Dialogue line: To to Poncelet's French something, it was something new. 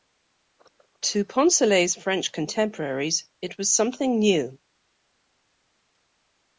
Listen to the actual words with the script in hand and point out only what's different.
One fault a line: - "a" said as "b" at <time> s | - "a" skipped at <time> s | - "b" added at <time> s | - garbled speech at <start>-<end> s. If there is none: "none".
- "to" skipped at 1.2 s
- "something" said as "contemporaries" at 2.3 s